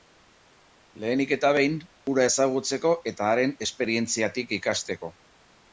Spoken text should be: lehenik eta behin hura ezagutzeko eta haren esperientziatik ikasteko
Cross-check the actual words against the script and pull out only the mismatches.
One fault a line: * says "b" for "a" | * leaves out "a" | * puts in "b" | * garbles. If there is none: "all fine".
all fine